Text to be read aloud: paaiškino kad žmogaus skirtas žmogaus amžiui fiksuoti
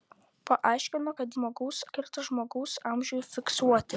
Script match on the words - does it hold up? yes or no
yes